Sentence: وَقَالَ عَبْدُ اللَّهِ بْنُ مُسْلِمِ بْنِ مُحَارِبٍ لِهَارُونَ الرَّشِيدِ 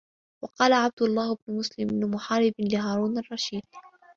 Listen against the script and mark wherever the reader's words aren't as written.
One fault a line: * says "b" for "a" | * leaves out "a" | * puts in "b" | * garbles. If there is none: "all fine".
all fine